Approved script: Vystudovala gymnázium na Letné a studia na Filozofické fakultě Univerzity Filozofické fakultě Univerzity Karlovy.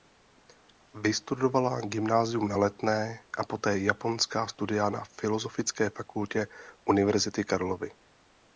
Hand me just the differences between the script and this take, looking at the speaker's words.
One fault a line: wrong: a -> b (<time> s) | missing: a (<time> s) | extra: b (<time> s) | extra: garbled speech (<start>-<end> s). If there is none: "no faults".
extra: poté japonská (3.4 s)
missing: Filozofické fakultě Univerzity (7.4 s)